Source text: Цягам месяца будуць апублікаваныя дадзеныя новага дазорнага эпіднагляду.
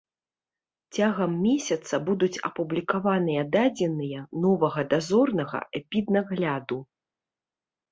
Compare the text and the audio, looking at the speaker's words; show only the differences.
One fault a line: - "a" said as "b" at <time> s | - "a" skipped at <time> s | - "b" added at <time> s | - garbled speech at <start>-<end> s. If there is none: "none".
none